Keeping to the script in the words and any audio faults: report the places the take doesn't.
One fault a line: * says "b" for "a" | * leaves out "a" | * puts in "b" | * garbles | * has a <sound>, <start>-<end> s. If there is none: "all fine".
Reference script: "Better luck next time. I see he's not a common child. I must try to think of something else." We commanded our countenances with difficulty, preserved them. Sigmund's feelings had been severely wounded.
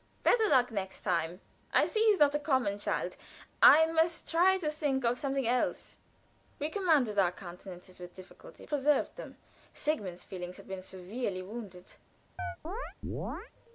* has a chirp, 12.4-13.5 s